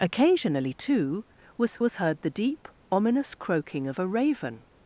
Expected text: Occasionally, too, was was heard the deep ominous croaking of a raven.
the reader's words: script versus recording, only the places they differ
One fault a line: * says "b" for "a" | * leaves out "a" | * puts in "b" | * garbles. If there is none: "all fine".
all fine